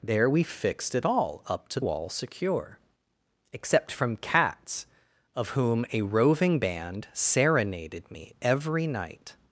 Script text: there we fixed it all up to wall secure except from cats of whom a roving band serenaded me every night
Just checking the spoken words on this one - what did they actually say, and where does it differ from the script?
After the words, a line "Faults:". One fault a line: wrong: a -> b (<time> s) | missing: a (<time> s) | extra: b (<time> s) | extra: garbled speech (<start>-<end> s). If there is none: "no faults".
there we fixed it all up to wall secure except from cats of whom a roving band serenaded me every night
Faults:
no faults